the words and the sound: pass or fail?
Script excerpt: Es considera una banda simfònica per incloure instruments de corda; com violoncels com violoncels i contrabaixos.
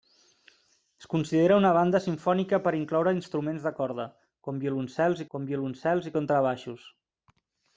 pass